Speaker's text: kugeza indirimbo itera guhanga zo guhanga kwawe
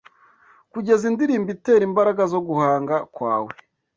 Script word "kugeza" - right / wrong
right